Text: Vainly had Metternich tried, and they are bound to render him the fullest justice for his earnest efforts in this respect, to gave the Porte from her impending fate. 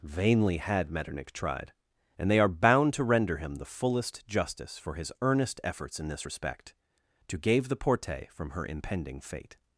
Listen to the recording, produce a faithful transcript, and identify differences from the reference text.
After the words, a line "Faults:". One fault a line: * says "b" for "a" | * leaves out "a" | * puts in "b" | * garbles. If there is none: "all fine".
Vainly had Metternich tried, and they are bound to render him the fullest justice for his earnest efforts in this respect, to gave the Porte from her impending fate.
Faults:
all fine